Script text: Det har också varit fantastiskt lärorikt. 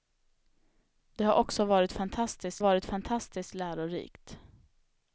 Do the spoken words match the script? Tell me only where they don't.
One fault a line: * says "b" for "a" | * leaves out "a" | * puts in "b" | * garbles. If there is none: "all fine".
* puts in "varit fantastiskt"